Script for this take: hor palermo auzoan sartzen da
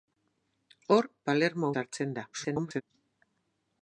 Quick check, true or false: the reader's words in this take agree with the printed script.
false